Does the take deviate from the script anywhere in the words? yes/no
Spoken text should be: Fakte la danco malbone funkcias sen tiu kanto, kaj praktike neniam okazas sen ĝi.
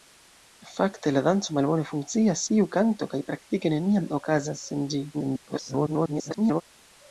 yes